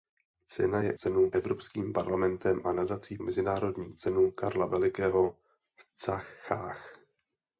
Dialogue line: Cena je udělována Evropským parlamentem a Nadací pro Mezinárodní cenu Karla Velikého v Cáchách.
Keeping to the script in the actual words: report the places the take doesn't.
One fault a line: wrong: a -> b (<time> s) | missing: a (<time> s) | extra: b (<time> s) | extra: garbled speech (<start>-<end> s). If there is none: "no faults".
wrong: udělována -> cenu (0.9 s)
missing: pro (3.2 s)